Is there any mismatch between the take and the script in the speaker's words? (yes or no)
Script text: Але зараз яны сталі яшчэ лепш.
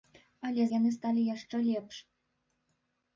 yes